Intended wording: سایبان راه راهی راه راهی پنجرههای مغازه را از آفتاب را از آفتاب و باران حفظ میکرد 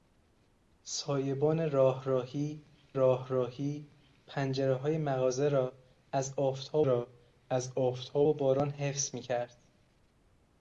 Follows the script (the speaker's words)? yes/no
yes